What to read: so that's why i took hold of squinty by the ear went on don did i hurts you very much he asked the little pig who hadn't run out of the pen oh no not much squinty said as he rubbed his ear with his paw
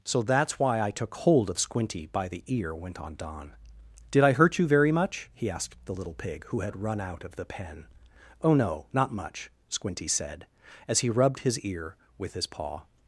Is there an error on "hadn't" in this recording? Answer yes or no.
yes